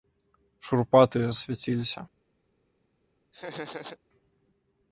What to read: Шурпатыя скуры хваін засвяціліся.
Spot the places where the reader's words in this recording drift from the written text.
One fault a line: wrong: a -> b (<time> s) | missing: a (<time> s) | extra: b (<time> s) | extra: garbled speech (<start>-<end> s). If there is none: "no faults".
missing: скуры хваін (1.3 s)